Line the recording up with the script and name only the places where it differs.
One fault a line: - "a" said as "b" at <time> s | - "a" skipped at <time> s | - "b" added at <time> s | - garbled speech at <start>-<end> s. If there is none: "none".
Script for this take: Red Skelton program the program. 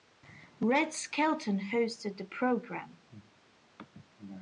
- "program" said as "hosted" at 1.6 s